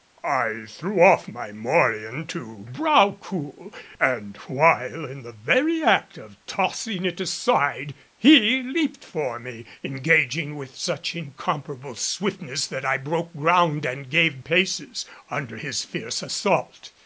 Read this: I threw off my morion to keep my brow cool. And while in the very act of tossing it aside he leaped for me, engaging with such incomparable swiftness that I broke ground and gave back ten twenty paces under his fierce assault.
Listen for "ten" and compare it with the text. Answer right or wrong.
wrong